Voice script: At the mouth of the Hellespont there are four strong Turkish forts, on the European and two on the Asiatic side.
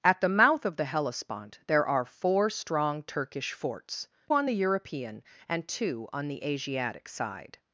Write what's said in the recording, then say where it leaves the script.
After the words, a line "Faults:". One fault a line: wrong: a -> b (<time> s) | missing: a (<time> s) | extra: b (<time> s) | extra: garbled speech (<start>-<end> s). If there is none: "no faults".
At the mouth of the Hellespont there are four strong Turkish forts, on the European and two on the Asiatic side.
Faults:
no faults